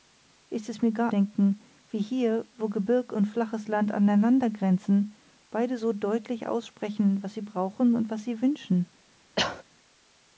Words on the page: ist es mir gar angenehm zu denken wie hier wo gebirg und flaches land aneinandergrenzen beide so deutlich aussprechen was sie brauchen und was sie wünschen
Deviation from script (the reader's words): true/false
true